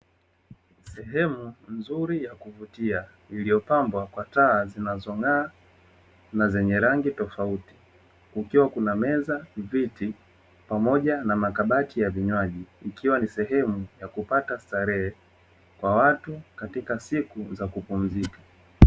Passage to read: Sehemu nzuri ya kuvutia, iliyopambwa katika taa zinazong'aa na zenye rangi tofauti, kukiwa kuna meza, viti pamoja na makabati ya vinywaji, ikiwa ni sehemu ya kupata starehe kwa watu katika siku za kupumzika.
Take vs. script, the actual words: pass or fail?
fail